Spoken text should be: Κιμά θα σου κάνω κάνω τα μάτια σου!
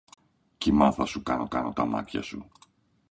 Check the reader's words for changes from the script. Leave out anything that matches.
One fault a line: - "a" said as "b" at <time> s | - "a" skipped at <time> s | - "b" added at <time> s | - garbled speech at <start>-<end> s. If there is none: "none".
none